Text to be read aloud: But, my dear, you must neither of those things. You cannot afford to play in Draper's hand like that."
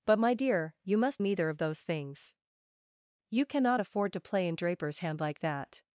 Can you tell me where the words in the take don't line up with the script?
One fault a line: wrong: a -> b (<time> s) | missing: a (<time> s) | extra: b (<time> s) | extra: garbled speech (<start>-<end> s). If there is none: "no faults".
no faults